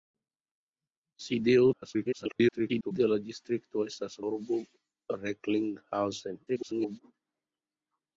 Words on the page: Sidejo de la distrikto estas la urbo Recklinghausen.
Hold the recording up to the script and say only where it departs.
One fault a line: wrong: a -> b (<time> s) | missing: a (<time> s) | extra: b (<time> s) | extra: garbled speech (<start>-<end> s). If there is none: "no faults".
extra: garbled speech (1.7-2.9 s)
missing: la (4.2 s)
extra: garbled speech (6.5-7.0 s)